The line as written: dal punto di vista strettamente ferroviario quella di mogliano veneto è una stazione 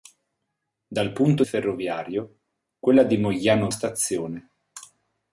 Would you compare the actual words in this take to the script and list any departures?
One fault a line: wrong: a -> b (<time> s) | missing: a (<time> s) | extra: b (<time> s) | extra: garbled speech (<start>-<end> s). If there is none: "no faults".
missing: di vista strettamente (1.4 s)
missing: veneto è una (3.7 s)